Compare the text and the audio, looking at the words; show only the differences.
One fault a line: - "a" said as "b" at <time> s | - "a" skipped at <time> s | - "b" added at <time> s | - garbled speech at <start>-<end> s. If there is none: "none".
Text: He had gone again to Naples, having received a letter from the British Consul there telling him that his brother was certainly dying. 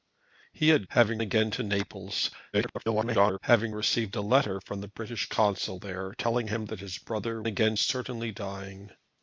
- "gone" said as "having" at 0.9 s
- garbled speech at 2.5-3.4 s
- "was" said as "again" at 7.4 s